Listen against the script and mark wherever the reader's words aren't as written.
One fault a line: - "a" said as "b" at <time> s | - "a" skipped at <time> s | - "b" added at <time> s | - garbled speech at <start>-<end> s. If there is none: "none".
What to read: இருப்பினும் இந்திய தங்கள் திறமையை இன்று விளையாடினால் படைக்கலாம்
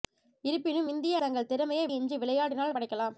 none